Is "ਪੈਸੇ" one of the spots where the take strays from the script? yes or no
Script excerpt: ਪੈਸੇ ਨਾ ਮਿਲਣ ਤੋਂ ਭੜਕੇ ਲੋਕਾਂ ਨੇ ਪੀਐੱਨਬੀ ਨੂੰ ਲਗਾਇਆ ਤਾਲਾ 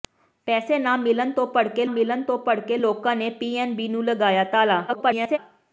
no